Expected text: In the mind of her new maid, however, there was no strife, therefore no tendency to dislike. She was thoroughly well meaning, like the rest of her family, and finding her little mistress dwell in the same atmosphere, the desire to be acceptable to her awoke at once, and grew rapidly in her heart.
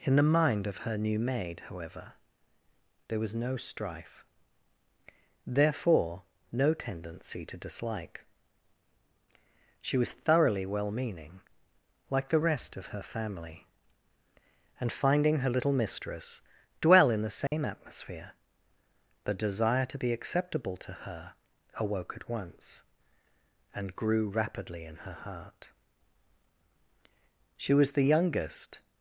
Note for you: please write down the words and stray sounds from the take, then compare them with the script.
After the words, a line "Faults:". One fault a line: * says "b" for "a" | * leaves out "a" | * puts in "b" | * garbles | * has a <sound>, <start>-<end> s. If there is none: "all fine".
In the mind of her new maid, however, there was no strife, therefore no tendency to dislike. She was thoroughly well meaning, like the rest of her family, and finding her little mistress dwell in the same atmosphere, the desire to be acceptable to her awoke at once, and grew rapidly in her heart. She was the youngest
Faults:
* has a dropout, 17.5-17.5 s
* puts in "She was the youngest"